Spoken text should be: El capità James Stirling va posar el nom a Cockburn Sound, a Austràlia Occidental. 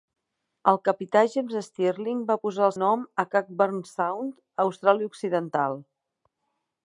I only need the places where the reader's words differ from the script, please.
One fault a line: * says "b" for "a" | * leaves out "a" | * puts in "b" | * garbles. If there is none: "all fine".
all fine